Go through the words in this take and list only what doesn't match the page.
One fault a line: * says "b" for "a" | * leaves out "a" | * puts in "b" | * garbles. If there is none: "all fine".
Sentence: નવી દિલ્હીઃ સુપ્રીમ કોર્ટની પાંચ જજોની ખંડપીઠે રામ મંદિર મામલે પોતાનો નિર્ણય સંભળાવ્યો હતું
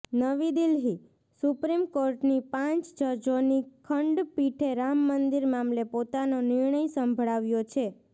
* says "છે" for "હતું"